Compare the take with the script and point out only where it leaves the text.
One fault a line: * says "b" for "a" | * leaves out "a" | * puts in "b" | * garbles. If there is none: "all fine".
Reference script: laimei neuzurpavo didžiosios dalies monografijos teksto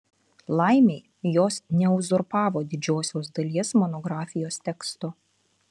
* puts in "jos"